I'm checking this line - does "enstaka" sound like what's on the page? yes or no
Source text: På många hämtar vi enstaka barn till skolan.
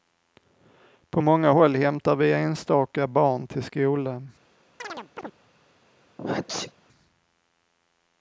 yes